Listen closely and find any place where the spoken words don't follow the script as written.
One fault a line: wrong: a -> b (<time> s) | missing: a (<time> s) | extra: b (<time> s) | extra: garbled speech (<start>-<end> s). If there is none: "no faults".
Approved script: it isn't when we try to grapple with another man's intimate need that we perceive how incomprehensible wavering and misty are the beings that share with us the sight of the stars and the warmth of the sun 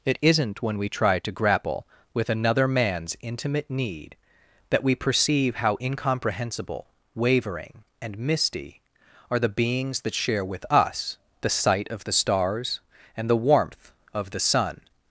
no faults